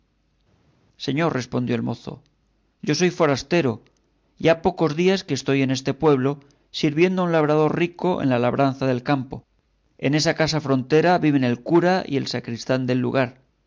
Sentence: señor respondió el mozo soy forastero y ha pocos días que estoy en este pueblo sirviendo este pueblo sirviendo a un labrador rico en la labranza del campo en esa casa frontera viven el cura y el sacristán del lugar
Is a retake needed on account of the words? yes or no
yes